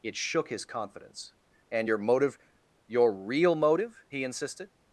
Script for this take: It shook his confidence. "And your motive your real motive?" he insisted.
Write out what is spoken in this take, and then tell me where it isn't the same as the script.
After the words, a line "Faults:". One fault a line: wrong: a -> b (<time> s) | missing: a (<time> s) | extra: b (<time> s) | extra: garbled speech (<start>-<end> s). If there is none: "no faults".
It shook his confidence. "And your motive your real motive?" he insisted.
Faults:
no faults